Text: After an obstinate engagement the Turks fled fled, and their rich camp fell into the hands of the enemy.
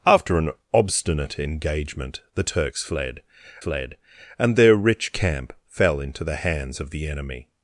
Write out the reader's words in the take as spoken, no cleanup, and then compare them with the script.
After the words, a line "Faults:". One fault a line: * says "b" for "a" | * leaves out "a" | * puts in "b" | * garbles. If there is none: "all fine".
After an obstinate engagement the Turks fled fled, and their rich camp fell into the hands of the enemy.
Faults:
all fine